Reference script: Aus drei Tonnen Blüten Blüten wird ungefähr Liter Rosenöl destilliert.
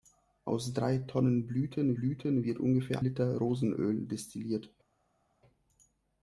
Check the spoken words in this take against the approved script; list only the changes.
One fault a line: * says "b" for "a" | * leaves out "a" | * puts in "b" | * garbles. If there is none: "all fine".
all fine